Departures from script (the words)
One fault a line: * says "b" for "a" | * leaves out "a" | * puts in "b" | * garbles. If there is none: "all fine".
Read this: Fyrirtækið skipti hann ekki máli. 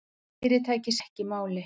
* leaves out "skipti hann"